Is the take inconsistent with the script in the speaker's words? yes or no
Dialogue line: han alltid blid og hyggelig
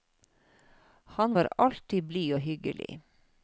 yes